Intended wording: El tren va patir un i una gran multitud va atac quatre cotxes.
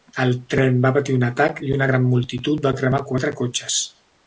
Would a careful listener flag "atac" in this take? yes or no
yes